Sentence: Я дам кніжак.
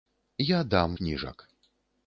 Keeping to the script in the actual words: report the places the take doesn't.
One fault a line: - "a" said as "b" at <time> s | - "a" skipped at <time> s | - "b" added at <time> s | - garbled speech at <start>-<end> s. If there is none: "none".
none